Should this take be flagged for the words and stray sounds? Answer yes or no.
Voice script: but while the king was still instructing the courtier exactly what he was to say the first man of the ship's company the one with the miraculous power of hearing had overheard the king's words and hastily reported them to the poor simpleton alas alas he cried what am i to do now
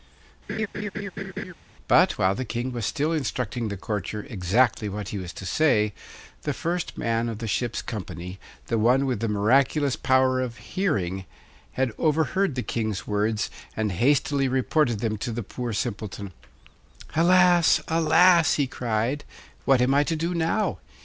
yes